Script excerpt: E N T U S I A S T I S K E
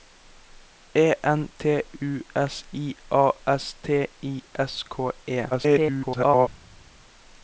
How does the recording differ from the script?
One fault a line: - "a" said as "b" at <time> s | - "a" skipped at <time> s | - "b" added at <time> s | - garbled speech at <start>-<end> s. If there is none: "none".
- garbled speech at 5.5-6.5 s